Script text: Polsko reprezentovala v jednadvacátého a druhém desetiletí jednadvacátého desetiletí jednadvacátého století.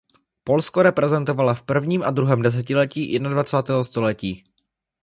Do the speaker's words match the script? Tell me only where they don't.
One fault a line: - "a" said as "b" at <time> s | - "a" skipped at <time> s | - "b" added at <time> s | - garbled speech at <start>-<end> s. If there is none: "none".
- "jednadvacátého" said as "prvním" at 1.6 s
- "desetiletí jednadvacátého" skipped at 3.8 s